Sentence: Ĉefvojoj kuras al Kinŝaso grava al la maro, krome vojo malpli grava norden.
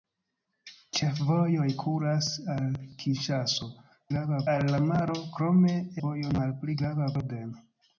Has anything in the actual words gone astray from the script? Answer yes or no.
no